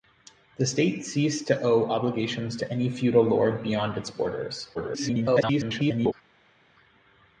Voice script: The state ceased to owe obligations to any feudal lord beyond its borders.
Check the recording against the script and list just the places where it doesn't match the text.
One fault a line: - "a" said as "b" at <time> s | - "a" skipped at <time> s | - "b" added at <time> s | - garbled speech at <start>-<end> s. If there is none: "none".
- garbled speech at 4.7-6.1 s